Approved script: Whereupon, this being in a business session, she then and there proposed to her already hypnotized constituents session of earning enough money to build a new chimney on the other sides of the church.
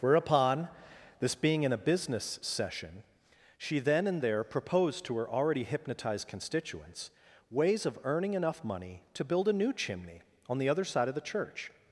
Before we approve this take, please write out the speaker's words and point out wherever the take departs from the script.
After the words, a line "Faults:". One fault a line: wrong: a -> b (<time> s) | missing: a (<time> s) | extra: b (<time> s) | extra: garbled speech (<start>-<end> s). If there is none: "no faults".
Whereupon, this being in a business session, she then and there proposed to her already hypnotized constituents ways of earning enough money to build a new chimney on the other side of the church.
Faults:
wrong: session -> ways (7.5 s)
wrong: sides -> side (10.8 s)